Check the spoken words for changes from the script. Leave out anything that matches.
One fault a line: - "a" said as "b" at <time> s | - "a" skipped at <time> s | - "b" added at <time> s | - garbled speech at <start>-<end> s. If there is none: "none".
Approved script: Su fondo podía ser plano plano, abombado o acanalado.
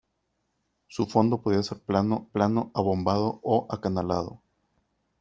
none